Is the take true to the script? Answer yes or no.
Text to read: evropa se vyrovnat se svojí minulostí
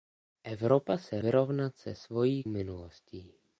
yes